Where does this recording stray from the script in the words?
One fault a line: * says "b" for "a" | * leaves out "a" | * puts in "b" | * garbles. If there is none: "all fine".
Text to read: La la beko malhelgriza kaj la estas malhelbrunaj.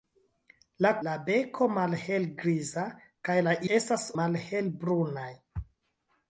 all fine